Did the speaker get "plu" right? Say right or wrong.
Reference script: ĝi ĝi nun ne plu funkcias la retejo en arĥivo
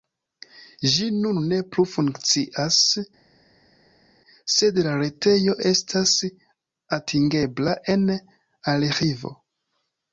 right